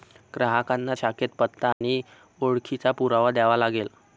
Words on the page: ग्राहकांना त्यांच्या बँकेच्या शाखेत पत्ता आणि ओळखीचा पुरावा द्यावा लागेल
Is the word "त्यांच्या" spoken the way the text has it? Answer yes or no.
no